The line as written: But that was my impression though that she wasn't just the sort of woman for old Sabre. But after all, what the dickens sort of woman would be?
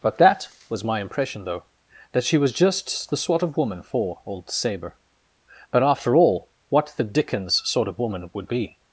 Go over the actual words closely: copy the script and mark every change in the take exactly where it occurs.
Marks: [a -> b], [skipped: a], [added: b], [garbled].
But that was my impression though that she [wasn't -> was] just the sort of woman for old Sabre. But after all, what the dickens sort of woman would be?